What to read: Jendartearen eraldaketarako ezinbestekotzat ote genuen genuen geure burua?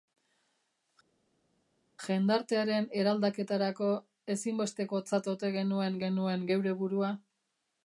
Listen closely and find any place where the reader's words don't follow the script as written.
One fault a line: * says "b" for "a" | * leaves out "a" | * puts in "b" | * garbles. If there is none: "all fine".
all fine